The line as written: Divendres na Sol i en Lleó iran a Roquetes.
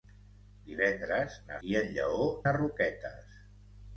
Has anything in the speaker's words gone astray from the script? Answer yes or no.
yes